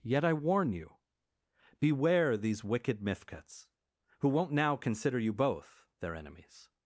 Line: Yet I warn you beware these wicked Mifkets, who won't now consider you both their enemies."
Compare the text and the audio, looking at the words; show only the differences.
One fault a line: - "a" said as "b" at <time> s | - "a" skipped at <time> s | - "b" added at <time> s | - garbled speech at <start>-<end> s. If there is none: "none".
none